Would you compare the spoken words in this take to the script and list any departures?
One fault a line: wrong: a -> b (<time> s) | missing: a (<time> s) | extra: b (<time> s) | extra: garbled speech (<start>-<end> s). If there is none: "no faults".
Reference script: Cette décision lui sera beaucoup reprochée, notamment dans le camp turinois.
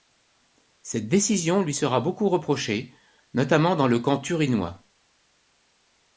no faults